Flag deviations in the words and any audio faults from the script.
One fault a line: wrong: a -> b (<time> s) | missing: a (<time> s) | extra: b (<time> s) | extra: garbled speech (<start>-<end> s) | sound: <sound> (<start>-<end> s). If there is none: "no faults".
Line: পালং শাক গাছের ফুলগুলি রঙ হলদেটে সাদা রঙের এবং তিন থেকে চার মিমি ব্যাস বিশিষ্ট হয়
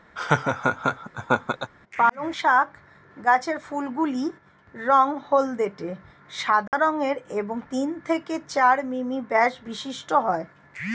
sound: laugh (0.2-1.7 s)
sound: dropout (6.7-6.7 s)